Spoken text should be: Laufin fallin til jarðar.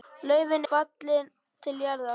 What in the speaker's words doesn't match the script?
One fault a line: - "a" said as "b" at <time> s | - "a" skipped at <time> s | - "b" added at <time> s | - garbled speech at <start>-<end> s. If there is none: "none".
none